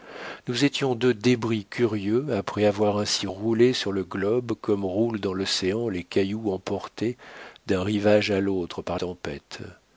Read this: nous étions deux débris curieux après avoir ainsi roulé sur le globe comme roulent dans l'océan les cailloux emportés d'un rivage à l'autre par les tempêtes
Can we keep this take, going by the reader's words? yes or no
no